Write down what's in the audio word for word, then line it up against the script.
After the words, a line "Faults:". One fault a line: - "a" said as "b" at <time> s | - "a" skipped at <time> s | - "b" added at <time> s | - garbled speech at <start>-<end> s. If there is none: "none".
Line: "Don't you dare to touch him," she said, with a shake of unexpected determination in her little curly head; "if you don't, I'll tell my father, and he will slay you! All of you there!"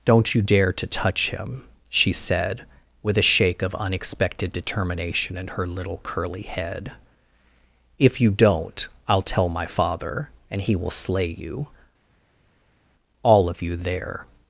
"Don't you dare to touch him," she said, with a shake of unexpected determination in her little curly head; "if you don't, I'll tell my father, and he will slay you! All of you there!"
Faults:
none